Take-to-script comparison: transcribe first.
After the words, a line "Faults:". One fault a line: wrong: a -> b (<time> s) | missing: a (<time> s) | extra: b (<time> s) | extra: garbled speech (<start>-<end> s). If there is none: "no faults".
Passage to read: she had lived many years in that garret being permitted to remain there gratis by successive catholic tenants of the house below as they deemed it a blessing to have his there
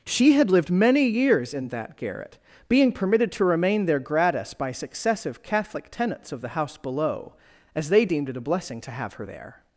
she had lived many years in that garret being permitted to remain there gratis by successive catholic tenants of the house below as they deemed it a blessing to have her there
Faults:
wrong: his -> her (9.1 s)